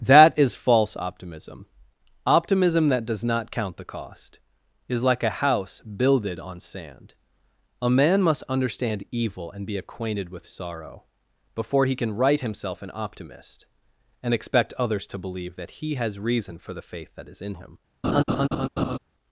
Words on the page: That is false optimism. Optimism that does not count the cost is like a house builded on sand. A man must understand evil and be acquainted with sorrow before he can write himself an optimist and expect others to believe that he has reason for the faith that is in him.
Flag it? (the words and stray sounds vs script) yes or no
yes